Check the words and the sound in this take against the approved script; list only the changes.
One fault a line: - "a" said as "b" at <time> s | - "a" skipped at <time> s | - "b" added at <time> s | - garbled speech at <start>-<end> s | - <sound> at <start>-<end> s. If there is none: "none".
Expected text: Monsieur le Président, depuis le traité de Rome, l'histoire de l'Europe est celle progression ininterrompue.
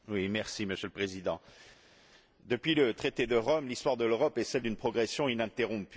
- "d'une" added at 4.6 s